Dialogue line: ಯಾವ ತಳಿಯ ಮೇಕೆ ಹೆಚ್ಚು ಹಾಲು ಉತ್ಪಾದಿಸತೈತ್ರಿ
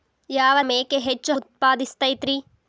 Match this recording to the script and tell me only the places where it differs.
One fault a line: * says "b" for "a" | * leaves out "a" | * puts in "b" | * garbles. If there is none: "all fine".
* leaves out "ತಳಿಯ"
* leaves out "ಹಾಲು"